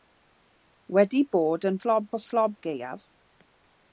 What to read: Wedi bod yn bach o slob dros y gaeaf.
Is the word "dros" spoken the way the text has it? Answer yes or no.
no